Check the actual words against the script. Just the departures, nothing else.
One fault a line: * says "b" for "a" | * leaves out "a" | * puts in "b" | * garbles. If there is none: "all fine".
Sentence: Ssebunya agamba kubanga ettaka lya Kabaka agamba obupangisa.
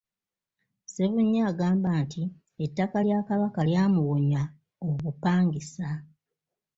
* says "nti" for "kubanga"
* says "lyamuwonya" for "agamba"